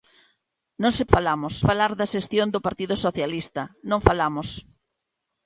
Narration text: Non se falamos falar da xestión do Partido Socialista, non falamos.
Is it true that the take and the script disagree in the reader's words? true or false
false